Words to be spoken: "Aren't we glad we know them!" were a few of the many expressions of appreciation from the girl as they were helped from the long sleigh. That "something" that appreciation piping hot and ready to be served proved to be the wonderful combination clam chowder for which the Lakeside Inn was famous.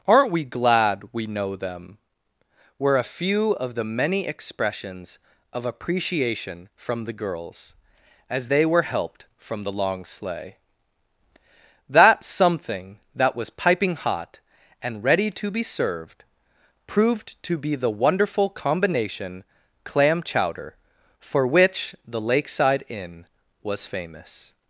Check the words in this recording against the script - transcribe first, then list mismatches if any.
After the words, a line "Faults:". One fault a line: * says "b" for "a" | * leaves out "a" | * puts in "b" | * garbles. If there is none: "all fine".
"Aren't we glad we know them!" were a few of the many expressions of appreciation from the girls as they were helped from the long sleigh. That "something" that was piping hot and ready to be served proved to be the wonderful combination clam chowder for which the Lakeside Inn was famous.
Faults:
* says "girls" for "girl"
* says "was" for "appreciation"